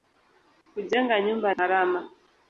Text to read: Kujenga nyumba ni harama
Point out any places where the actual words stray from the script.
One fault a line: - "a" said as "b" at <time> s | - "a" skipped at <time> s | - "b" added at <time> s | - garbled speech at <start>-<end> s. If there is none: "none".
- "ni" skipped at 1.5 s